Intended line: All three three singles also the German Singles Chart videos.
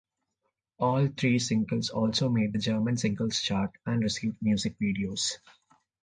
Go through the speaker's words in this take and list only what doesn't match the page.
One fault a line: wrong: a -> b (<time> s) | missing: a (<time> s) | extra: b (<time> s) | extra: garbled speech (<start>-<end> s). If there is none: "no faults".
missing: three (1.4 s)
extra: made (2.3 s)
extra: and received music (3.8 s)